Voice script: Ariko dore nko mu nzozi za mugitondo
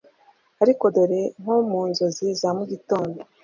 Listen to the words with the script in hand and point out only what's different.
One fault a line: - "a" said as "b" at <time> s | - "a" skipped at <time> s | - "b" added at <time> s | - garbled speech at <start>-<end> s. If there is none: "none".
none